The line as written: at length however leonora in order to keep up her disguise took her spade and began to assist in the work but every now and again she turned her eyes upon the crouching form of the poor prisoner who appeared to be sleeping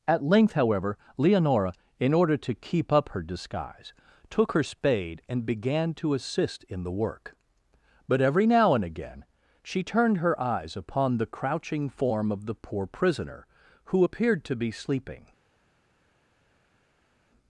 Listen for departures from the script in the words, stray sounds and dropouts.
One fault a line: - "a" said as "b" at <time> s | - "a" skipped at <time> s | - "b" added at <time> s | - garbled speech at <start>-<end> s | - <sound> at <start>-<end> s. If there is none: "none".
none